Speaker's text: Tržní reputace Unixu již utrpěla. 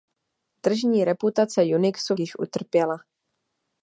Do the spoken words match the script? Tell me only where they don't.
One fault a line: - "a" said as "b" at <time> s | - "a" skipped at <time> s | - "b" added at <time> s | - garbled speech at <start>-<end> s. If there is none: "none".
none